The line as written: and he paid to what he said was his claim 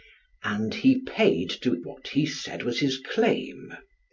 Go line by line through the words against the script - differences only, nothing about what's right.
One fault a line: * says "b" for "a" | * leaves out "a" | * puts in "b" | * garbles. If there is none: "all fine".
all fine